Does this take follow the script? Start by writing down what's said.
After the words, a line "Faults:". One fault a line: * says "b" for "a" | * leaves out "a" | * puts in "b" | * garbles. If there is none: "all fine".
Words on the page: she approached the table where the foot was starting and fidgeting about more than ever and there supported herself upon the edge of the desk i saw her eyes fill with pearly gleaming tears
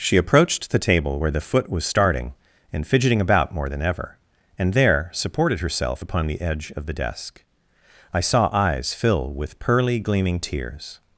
she approached the table where the foot was starting and fidgeting about more than ever and there supported herself upon the edge of the desk i saw eyes fill with pearly gleaming tears
Faults:
* leaves out "her"